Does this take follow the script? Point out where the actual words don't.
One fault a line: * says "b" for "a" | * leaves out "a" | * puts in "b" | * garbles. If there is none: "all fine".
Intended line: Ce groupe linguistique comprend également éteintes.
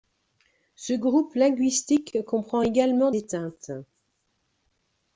all fine